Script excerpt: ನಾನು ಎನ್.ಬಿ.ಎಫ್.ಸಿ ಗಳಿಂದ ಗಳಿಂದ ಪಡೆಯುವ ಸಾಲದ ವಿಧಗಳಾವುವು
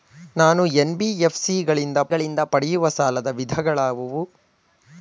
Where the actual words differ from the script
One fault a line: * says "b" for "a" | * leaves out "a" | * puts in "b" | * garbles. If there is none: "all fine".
all fine